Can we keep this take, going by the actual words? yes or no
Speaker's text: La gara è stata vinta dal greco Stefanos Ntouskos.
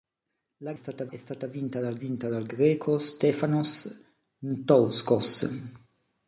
no